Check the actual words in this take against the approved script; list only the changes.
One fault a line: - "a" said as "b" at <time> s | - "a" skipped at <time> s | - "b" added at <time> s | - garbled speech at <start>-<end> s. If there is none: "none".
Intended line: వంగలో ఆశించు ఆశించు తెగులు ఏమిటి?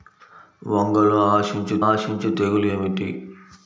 none